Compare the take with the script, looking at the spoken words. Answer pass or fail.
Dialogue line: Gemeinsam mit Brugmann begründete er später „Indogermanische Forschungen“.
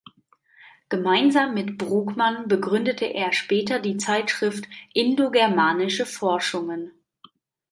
fail